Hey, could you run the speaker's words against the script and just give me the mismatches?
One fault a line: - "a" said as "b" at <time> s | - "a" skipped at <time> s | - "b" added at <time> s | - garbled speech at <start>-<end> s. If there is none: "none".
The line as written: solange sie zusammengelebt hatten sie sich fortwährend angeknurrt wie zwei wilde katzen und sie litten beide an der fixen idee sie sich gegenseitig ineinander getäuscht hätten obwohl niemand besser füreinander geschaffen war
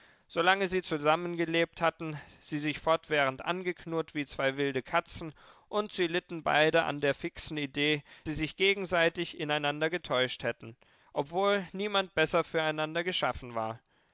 none